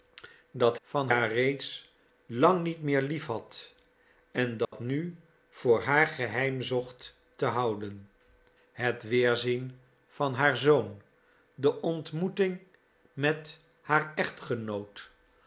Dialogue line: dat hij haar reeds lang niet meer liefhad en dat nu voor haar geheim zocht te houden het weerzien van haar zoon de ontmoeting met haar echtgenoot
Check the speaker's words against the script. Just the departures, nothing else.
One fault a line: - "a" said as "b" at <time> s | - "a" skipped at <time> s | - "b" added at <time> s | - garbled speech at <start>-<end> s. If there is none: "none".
- "hij" said as "van" at 0.8 s